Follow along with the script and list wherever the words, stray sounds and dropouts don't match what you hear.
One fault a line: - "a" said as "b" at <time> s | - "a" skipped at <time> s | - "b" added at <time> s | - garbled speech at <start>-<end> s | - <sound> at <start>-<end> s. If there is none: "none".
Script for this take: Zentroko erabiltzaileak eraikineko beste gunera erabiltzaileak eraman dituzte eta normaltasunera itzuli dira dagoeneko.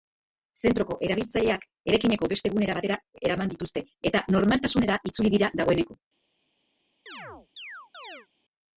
- "erabiltzaileak" said as "batera" at 2.8 s
- chirp at 7.1-8.3 s